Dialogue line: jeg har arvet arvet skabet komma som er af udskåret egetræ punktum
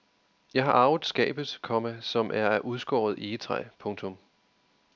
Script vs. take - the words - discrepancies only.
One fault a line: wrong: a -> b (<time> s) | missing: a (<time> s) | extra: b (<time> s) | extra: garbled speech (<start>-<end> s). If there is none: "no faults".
missing: arvet (1.0 s)